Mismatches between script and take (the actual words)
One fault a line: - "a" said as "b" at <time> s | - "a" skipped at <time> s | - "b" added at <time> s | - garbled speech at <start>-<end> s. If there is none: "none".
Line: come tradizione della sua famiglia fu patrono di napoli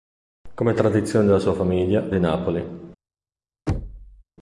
- "fu patrono" skipped at 2.1 s